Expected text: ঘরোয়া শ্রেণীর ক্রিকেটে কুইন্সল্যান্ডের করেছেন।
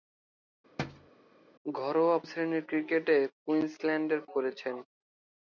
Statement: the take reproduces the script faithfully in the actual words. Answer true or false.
true